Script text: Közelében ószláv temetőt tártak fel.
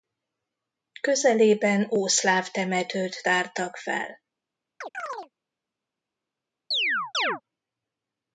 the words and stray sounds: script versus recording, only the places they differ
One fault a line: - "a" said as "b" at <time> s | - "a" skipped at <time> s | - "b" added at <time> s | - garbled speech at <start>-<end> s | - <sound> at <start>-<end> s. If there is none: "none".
- chirp at 4.8-5.3 s
- chirp at 6.7-7.4 s